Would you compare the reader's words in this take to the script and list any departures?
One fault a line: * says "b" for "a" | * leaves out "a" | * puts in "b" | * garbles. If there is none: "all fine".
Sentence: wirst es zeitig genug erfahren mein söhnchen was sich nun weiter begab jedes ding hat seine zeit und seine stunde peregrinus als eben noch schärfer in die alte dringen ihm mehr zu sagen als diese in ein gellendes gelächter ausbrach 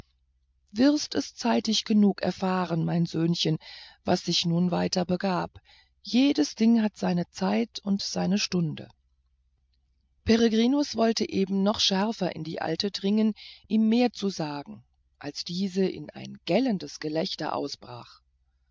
* says "wollte" for "als"